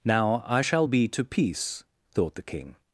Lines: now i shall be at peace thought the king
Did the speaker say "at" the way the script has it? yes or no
no